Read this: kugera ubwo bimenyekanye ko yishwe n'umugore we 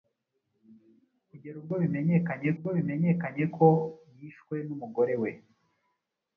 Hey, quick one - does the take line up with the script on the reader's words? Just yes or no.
no